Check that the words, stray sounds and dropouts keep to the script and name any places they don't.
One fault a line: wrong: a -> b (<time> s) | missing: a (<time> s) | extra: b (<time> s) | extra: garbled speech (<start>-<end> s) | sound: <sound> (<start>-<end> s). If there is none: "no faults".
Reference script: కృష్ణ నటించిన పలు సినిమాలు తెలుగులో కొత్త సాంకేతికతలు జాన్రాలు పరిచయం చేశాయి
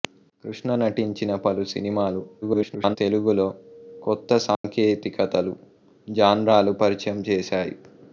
extra: garbled speech (2.4-3.0 s)
sound: dropout (4.5-4.6 s)